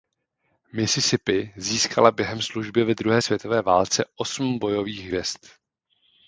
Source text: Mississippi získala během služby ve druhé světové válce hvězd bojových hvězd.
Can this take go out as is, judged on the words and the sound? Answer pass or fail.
fail